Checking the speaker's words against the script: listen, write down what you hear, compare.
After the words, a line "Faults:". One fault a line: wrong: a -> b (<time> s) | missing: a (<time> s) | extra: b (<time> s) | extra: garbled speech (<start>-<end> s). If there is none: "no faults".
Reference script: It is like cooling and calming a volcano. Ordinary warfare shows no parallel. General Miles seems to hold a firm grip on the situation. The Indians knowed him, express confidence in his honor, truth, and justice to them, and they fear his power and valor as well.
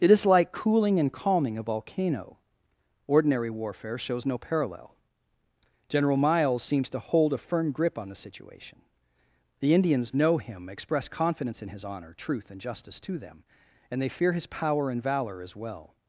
It is like cooling and calming a volcano. Ordinary warfare shows no parallel. General Miles seems to hold a firm grip on the situation. The Indians know him, express confidence in his honor, truth, and justice to them, and they fear his power and valor as well.
Faults:
wrong: knowed -> know (10.1 s)